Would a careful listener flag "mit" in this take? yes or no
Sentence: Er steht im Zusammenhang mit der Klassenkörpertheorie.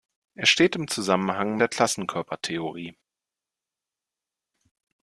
yes